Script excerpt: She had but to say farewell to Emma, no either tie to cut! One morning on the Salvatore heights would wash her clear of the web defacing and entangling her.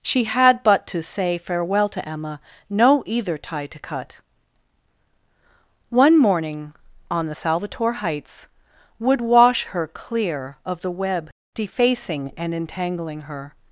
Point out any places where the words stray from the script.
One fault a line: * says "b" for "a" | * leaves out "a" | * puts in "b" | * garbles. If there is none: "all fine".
all fine